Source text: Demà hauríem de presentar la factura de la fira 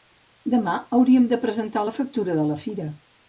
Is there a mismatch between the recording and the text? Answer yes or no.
no